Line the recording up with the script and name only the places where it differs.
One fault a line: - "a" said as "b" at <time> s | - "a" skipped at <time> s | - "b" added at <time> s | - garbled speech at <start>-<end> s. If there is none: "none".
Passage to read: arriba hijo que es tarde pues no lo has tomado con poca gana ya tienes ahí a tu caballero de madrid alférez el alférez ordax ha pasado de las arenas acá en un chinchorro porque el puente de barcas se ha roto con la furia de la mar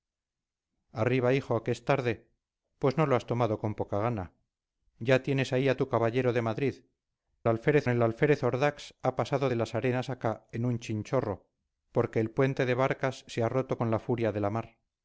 none